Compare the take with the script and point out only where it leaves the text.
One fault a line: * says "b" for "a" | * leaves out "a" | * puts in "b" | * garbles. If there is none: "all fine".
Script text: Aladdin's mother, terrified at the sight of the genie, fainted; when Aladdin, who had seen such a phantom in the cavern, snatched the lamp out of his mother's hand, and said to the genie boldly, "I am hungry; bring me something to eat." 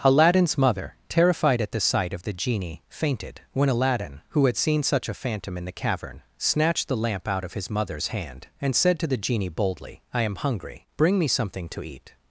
all fine